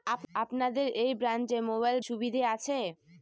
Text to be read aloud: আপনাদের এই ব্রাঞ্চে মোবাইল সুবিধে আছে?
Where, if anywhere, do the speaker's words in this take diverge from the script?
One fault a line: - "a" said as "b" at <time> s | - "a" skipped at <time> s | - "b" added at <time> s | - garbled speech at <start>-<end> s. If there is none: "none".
none